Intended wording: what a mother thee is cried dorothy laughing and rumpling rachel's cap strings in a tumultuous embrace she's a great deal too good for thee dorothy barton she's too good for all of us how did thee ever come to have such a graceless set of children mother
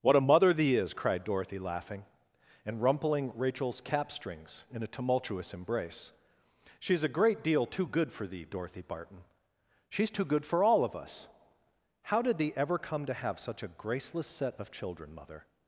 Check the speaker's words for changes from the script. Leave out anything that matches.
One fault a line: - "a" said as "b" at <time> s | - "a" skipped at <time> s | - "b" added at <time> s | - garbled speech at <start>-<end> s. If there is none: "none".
none